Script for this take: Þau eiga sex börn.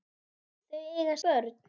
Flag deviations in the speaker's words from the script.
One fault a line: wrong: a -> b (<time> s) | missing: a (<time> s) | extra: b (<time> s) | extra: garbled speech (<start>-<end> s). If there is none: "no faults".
missing: sex (1.1 s)